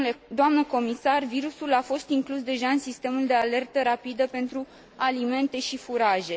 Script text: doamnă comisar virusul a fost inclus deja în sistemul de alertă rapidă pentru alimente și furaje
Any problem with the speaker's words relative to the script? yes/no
no